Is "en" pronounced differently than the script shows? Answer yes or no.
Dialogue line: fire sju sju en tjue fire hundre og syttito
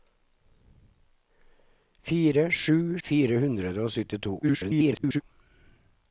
yes